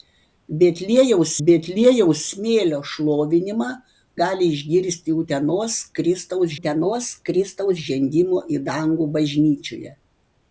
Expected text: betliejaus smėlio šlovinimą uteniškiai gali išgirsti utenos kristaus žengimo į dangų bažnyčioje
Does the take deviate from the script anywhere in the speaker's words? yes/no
yes